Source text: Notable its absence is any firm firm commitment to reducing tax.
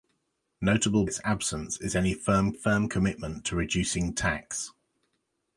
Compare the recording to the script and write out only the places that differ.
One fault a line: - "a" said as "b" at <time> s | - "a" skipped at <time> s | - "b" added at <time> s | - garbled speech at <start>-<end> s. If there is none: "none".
none